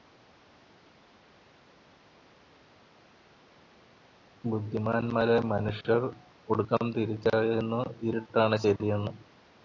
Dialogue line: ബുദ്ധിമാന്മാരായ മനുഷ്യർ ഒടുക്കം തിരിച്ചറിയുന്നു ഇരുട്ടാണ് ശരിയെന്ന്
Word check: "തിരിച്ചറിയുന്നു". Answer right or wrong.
right